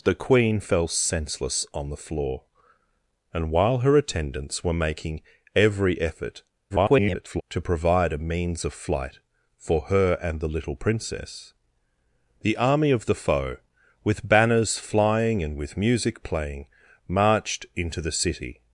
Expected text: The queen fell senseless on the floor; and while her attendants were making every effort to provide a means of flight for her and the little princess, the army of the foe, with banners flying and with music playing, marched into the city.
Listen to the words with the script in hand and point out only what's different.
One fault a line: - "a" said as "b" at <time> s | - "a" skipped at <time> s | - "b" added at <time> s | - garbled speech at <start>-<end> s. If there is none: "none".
- garbled speech at 6.7-7.4 s